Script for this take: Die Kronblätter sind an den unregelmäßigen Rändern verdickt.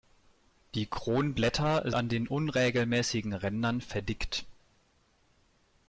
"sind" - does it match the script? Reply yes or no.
no